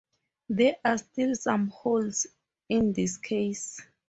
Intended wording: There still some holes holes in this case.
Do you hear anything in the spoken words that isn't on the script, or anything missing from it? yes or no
yes